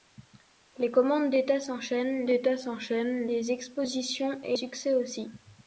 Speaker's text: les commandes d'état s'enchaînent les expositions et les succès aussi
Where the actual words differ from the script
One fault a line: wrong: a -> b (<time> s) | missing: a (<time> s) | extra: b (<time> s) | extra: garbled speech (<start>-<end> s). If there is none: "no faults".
extra: d'état s'enchaînent (2.2 s)
missing: les (4.6 s)